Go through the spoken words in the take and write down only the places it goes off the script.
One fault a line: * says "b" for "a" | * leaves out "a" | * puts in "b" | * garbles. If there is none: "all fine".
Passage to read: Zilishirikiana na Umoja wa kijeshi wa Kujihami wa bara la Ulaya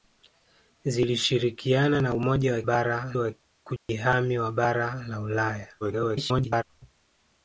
* says "bara" for "kijeshi"
* garbles